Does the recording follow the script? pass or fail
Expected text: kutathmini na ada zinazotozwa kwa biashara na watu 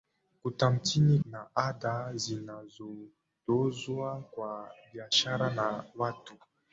pass